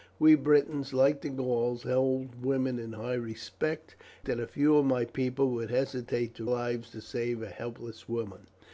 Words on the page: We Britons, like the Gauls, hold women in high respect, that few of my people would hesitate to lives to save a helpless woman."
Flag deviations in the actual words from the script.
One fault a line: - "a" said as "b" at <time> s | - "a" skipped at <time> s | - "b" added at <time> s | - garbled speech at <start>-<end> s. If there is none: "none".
none